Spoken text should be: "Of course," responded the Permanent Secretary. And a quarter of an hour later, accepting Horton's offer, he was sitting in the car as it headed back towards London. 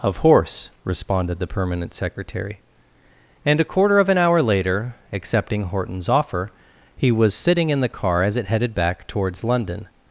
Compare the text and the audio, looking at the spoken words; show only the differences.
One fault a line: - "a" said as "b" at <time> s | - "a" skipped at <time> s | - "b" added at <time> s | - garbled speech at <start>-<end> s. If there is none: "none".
- "course" said as "horse" at 0.2 s